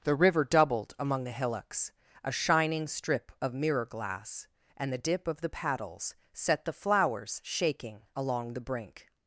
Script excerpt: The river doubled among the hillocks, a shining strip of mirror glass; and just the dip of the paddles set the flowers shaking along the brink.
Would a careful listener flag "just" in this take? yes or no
yes